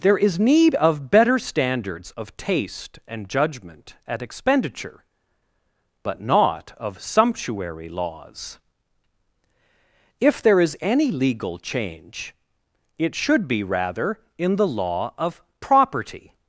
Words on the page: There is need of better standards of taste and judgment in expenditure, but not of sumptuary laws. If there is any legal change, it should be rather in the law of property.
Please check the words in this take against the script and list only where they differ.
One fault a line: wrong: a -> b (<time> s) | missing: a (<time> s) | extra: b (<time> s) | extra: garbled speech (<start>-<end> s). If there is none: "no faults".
wrong: in -> at (4.1 s)